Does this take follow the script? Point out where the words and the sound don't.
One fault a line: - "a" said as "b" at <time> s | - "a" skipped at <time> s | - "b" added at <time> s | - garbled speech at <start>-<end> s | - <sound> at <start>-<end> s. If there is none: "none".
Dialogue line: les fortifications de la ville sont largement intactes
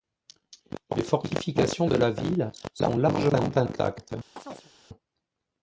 - chirp at 4.4-4.7 s